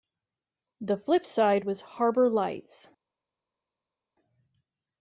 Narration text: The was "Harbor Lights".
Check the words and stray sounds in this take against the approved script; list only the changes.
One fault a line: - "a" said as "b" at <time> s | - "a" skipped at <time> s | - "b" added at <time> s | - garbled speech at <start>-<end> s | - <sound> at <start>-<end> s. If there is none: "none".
- "flip side" added at 1.0 s